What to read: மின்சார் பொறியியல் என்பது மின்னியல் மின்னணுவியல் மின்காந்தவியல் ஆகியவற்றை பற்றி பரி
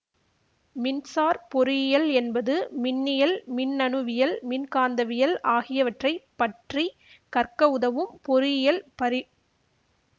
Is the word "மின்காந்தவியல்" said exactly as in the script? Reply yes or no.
yes